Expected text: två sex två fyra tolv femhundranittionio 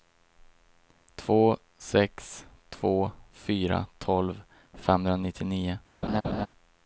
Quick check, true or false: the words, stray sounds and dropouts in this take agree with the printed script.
false